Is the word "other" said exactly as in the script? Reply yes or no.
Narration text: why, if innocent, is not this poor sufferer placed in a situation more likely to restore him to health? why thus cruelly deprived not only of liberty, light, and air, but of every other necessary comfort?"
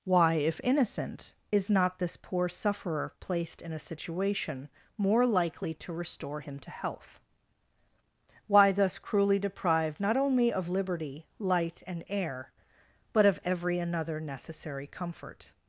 no